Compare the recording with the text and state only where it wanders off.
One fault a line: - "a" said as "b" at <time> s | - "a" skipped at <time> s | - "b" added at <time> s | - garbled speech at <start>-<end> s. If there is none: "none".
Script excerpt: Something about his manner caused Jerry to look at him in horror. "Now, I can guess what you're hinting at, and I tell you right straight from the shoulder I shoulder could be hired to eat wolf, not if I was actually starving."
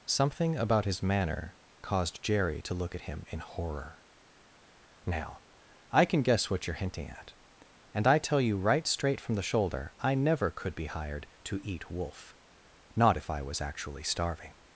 - "shoulder" said as "never" at 10.2 s